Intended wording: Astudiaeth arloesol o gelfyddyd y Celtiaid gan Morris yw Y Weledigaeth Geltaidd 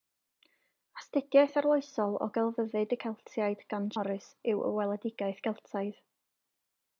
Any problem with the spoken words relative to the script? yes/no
no